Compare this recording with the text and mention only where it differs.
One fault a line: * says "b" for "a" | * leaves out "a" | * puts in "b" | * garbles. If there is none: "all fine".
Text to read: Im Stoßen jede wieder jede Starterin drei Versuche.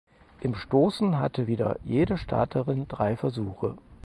* says "hatte" for "jede"